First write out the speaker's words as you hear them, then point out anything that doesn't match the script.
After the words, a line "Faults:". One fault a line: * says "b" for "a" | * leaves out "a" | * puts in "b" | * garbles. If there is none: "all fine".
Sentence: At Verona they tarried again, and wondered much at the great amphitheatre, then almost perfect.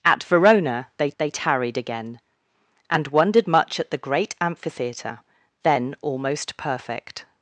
At Verona they they tarried again, and wondered much at the great amphitheatre, then almost perfect.
Faults:
* puts in "they"